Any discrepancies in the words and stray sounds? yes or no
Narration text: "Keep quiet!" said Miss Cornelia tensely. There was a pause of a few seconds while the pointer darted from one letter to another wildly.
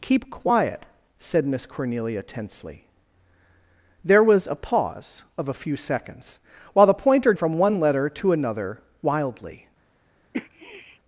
yes